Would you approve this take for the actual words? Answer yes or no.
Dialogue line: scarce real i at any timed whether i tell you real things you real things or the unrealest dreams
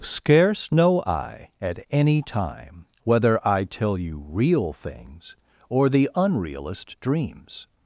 no